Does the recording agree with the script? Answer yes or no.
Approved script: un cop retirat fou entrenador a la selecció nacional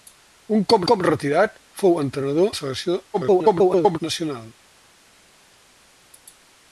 no